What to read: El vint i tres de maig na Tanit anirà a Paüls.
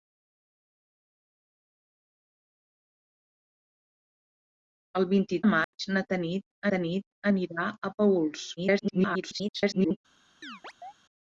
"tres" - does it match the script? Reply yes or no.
no